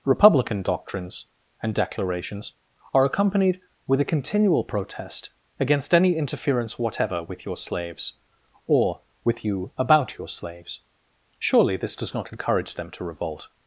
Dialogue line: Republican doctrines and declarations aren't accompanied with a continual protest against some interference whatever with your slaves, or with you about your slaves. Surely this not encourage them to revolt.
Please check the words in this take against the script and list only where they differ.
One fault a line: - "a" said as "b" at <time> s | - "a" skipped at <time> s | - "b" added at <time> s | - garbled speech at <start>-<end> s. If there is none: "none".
- "aren't" said as "are" at 2.9 s
- "some" said as "any" at 5.9 s
- "does" added at 11.9 s